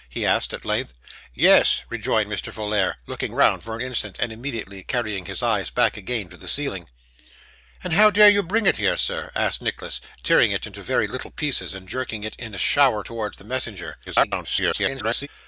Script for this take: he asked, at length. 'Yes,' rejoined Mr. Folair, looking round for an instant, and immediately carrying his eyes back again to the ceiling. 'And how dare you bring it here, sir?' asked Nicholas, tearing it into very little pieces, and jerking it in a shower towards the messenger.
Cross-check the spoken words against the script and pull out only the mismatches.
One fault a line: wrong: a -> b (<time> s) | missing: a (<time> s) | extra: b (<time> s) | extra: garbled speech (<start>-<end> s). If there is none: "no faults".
extra: garbled speech (14.1-15.3 s)